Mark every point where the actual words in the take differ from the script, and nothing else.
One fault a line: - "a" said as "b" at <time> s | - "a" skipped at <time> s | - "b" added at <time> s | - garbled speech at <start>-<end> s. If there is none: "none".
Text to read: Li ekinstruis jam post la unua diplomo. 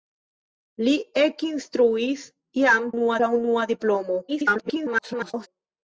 - "post" said as "unua" at 2.9 s
- garbled speech at 4.3-5.5 s